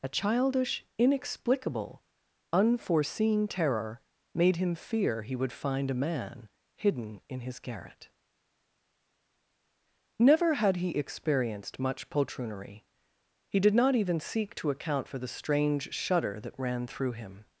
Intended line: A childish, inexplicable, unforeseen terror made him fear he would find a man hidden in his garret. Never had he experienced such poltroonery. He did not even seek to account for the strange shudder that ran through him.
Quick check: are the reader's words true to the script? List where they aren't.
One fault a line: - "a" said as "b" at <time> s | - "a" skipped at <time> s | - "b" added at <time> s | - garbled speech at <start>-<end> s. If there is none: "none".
- "such" said as "much" at 11.8 s